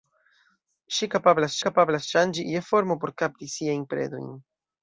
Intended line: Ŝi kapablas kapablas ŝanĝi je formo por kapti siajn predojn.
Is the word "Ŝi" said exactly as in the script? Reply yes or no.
yes